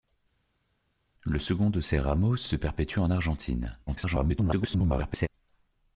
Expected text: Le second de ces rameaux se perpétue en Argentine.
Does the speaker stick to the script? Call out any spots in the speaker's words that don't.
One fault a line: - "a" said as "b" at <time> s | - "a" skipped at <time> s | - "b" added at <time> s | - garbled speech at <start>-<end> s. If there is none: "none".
- "se" added at 2.4 s
- garbled speech at 3.9-5.3 s